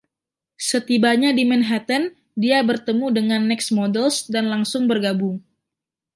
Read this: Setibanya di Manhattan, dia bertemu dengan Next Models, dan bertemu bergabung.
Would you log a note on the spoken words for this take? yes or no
yes